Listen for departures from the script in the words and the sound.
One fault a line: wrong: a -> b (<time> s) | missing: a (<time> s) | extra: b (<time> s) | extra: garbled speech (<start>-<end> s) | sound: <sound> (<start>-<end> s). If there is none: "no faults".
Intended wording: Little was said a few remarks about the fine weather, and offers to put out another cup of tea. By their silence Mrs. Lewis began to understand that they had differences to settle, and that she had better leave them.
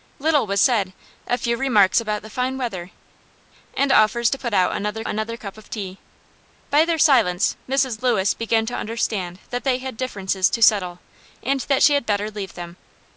extra: another (5.0 s)